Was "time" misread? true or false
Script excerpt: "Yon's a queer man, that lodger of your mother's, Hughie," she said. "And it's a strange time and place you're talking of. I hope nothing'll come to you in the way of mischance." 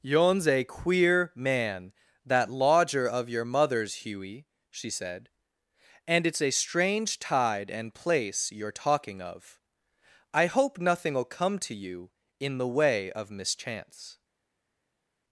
true